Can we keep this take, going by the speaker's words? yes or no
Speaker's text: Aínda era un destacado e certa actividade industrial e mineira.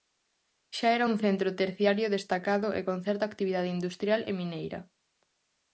no